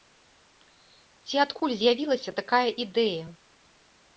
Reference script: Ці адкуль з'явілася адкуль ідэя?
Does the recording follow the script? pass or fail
fail